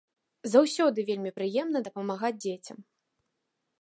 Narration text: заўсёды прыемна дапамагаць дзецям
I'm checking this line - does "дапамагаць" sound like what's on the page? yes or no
yes